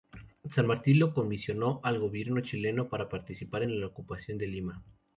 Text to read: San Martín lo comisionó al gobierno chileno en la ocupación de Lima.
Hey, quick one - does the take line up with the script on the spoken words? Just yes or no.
no